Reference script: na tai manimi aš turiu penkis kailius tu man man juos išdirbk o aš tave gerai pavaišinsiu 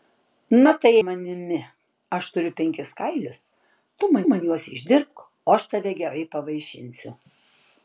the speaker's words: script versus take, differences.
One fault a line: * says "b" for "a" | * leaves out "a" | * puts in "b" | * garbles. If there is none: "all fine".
all fine